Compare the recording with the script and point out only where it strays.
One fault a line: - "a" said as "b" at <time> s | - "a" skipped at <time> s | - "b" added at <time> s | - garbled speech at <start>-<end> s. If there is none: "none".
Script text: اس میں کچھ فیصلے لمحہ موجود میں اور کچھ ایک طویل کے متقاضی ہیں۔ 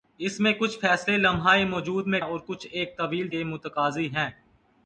none